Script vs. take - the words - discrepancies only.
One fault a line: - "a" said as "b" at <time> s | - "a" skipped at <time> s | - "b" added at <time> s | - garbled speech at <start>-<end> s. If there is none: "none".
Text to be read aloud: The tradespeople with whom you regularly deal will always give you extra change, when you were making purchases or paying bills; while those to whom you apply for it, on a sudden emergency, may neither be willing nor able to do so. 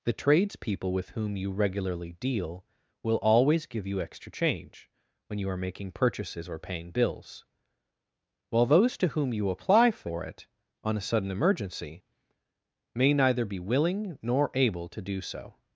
- "were" said as "are" at 5.5 s